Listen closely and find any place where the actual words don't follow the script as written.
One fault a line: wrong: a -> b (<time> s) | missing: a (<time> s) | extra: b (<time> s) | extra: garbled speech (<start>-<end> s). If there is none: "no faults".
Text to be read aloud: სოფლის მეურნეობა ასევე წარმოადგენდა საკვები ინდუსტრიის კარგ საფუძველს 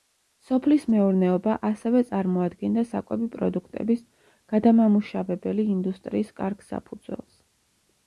extra: პროდუქტების გადამამუშავებელი (3.4 s)